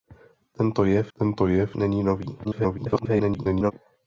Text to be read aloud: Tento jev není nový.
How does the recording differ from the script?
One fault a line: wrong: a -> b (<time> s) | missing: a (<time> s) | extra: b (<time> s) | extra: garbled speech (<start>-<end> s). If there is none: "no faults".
extra: tento jev (1.2 s)
extra: garbled speech (2.4-3.7 s)